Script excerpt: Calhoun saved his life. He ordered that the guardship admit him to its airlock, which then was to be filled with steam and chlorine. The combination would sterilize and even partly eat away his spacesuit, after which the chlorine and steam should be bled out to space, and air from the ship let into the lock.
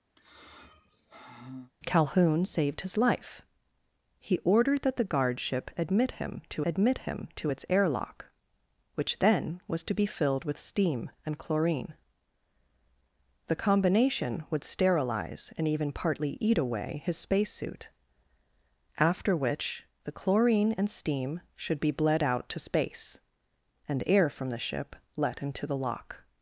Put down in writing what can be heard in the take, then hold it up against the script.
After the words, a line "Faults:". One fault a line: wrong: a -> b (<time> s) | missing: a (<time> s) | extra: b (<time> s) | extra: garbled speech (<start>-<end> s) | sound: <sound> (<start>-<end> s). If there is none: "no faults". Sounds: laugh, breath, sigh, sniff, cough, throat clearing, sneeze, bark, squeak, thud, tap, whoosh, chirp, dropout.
Calhoun saved his life. He ordered that the guardship admit him to admit him to its airlock, which then was to be filled with steam and chlorine. The combination would sterilize and even partly eat away his spacesuit, after which the chlorine and steam should be bled out to space, and air from the ship let into the lock.
Faults:
sound: sigh (0.2-1.7 s)
extra: admit him to (6.6 s)